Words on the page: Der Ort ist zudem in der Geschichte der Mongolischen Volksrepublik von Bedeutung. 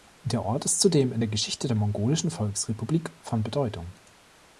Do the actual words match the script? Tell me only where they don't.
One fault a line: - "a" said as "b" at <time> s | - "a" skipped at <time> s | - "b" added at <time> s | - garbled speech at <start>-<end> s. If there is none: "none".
none